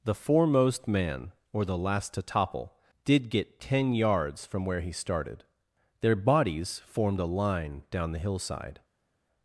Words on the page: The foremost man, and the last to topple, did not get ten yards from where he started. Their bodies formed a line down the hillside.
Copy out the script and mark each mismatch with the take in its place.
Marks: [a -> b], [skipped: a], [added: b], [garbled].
The foremost man, [and -> or] the last to topple, did [skipped: not] get ten yards from where he started. Their bodies formed a line down the hillside.